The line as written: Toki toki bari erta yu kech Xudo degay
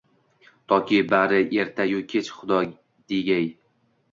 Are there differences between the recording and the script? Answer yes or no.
yes